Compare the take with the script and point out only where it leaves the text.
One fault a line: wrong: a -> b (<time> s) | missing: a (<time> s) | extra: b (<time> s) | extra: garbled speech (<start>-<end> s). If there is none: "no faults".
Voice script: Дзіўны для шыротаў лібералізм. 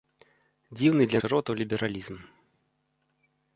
no faults